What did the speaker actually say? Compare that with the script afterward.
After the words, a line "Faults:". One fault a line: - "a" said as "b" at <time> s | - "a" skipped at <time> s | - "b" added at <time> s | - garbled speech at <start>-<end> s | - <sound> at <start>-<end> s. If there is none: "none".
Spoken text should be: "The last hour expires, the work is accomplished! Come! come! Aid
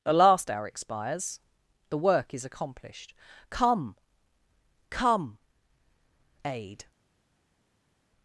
"The last hour expires, the work is accomplished! Come! come! Aid
Faults:
none